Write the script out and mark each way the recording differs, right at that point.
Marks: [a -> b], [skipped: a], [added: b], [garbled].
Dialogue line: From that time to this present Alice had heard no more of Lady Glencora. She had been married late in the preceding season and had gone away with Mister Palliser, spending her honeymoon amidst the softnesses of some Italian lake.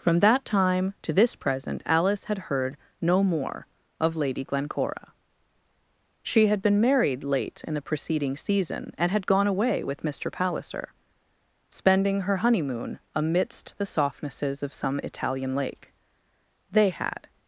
From that time to this present Alice had heard no more of Lady Glencora. She had been married late in the preceding season and had gone away with Mister Palliser, spending her honeymoon amidst the softnesses of some Italian lake. [added: They had]